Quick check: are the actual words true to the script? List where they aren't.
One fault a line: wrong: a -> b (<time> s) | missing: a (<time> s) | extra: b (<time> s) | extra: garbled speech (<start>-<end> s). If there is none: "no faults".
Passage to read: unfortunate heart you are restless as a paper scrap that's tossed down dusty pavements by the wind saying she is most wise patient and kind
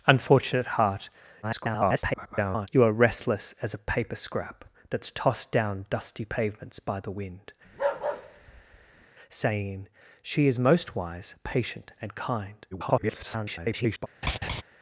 extra: garbled speech (1.4-2.7 s)
extra: garbled speech (12.7-14.1 s)